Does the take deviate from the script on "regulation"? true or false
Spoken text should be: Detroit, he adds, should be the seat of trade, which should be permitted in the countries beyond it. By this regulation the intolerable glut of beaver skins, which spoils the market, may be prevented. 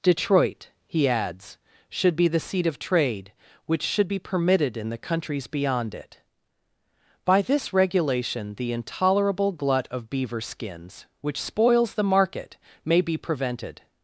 false